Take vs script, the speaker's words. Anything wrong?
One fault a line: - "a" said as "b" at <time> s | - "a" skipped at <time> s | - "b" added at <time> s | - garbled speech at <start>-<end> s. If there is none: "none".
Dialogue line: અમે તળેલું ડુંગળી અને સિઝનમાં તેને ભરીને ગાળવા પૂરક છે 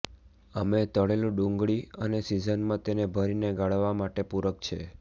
- "માટે" added at 4.0 s